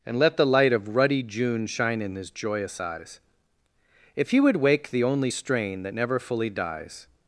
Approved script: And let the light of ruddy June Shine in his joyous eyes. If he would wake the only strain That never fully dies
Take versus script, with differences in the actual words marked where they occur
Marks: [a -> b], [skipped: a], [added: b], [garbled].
And let the light of ruddy June Shine in his joyous eyes. If he would wake the only strain That never fully dies